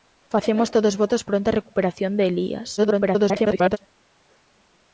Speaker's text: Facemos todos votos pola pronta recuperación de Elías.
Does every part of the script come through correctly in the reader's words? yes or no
no